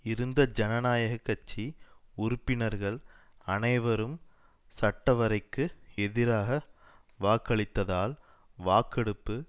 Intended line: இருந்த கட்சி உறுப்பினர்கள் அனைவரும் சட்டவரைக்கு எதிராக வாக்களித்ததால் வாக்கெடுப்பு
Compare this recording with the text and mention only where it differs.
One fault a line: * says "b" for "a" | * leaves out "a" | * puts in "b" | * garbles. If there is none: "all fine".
* puts in "ஜனநாயக"